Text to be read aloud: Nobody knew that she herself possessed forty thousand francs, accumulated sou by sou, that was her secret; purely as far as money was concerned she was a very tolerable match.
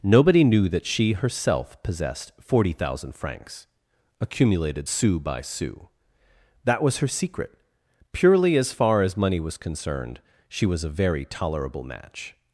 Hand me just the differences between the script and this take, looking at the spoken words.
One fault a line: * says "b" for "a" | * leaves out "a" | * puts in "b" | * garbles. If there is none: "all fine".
all fine